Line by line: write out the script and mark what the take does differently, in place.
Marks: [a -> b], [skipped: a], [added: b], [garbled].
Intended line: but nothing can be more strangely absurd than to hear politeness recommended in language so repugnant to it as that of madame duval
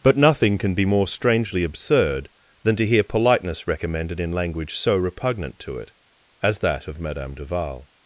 but nothing can be more strangely absurd than to hear politeness recommended in language so repugnant to it as that of madame duval